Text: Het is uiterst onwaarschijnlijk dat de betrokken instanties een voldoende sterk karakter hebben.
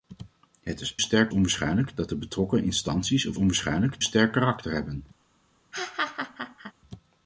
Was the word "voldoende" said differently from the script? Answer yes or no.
yes